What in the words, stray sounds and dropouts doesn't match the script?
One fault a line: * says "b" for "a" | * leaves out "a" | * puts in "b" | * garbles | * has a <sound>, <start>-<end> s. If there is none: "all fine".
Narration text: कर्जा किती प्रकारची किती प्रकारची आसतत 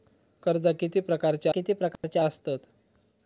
* has a dropout, 2.0-2.0 s